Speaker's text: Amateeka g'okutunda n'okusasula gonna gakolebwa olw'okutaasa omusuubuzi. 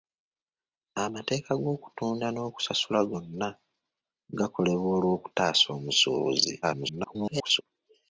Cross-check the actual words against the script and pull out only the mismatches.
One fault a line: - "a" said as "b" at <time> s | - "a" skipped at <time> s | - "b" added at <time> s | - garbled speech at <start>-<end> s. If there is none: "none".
- garbled speech at 6.6-7.6 s